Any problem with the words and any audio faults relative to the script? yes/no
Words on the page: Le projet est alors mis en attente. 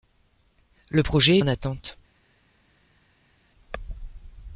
yes